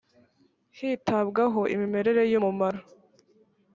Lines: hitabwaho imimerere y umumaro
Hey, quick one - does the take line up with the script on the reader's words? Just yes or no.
yes